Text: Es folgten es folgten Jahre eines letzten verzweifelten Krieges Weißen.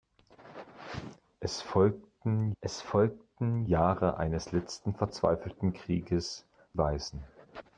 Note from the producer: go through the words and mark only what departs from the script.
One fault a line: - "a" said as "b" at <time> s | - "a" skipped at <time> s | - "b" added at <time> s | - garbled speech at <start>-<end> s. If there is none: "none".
none